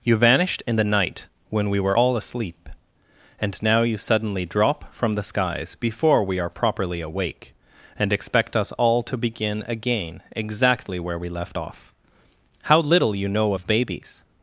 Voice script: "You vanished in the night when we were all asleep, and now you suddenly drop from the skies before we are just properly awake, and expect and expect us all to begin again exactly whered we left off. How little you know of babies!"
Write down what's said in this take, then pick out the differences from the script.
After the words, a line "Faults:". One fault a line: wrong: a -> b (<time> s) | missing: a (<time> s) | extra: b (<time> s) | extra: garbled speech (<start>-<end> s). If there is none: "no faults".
"You vanished in the night when we were all asleep, and now you suddenly drop from the skies before we are properly awake, and expect us all to begin again exactly where we left off. How little you know of babies!"
Faults:
missing: just (6.5 s)
missing: and expect (8.5 s)
wrong: whered -> where (11.0 s)